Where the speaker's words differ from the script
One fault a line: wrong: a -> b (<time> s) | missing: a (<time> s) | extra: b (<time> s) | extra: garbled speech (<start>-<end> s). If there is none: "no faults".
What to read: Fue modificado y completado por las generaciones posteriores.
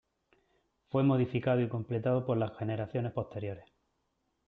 no faults